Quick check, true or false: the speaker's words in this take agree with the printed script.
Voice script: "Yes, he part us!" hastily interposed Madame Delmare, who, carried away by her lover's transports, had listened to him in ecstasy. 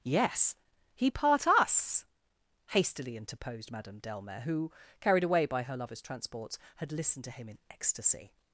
true